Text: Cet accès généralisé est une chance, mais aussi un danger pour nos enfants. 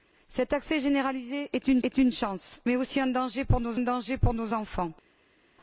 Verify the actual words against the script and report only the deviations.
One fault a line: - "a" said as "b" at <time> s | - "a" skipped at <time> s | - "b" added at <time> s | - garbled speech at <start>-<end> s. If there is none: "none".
- "est une" added at 1.8 s
- "danger pour nos" added at 3.8 s